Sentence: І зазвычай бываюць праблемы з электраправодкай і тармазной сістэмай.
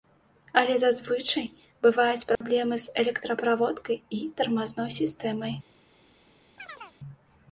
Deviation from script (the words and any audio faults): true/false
true